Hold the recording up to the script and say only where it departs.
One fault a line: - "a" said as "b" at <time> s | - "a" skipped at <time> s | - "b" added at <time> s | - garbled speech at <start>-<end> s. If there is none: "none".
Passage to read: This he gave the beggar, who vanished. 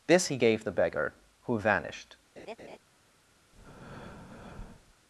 none